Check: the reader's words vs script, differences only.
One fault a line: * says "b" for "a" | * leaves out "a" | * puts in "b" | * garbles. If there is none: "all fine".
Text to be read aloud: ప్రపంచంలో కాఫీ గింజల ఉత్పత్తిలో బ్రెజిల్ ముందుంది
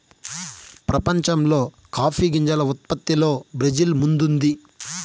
all fine